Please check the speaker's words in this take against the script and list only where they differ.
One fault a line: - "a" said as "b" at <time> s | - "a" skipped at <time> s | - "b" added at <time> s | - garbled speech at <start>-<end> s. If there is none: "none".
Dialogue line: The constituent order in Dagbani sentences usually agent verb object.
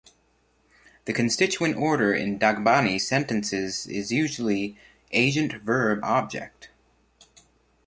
- "is" added at 3.8 s